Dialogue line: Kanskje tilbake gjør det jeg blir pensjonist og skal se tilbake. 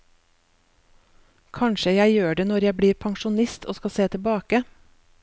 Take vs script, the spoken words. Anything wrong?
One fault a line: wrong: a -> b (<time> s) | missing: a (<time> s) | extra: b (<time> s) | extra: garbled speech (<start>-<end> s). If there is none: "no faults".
wrong: tilbake -> jeg (1.9 s)
extra: når (2.5 s)